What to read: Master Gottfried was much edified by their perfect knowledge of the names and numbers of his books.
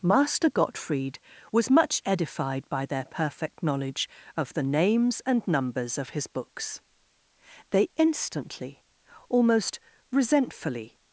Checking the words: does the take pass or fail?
fail